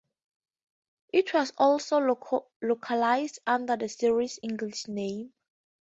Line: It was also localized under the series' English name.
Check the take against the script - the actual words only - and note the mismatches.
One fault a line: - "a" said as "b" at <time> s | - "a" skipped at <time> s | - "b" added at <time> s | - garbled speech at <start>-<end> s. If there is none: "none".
none